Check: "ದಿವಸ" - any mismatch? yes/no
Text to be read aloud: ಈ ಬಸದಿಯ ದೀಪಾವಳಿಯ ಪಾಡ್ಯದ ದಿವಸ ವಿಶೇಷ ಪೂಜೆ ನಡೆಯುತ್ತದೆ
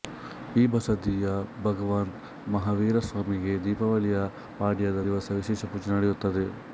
no